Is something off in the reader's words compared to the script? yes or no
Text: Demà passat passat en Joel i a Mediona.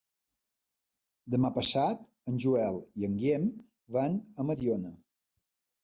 yes